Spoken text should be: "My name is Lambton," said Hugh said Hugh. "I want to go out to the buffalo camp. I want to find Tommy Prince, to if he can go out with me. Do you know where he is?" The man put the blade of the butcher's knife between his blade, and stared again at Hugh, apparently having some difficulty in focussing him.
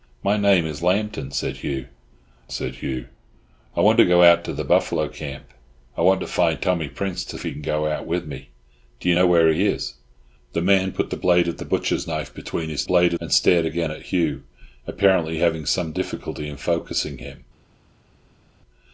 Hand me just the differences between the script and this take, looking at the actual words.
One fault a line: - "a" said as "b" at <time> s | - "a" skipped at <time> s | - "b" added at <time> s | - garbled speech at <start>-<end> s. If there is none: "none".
none